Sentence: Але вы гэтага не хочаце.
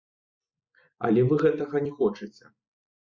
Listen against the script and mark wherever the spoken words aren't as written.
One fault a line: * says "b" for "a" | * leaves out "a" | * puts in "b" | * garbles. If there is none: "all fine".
all fine